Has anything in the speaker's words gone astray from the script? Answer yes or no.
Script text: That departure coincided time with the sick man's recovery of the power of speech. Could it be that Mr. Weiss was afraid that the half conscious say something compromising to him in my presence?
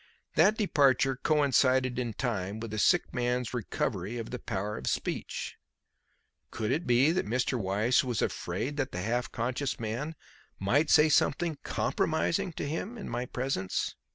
yes